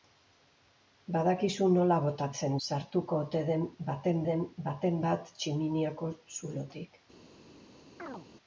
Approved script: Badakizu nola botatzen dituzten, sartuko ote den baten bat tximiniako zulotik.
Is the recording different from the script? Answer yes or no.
yes